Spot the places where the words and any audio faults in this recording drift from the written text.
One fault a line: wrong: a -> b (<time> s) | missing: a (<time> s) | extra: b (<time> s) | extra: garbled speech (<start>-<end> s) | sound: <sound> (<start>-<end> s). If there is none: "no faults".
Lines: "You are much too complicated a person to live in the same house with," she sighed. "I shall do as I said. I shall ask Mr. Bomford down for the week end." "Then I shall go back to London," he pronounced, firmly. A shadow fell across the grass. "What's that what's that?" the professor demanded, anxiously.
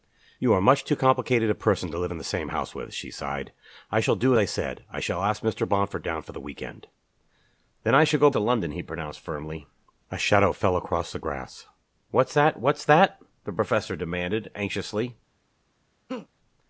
missing: as (4.3 s)
missing: back (8.3 s)
sound: laugh (16.1-16.3 s)